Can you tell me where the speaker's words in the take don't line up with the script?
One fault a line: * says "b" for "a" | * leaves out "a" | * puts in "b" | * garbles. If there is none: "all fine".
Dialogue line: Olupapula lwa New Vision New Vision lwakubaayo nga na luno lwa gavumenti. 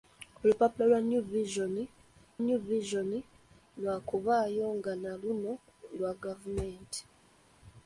all fine